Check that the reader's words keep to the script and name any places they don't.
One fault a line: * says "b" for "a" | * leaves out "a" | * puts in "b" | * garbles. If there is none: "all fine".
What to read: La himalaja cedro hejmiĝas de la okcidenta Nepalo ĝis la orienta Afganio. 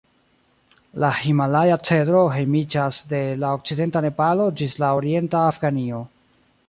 all fine